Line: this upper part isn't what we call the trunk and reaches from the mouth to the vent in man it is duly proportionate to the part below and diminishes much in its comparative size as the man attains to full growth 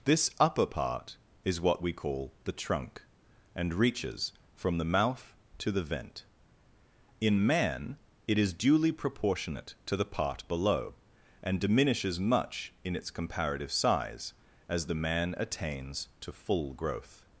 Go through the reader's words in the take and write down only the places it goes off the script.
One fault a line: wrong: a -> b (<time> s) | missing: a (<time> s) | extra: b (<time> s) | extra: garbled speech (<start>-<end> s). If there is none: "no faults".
wrong: isn't -> is (1.4 s)